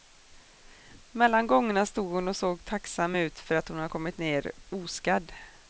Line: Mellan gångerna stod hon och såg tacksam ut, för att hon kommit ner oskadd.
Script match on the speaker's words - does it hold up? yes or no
yes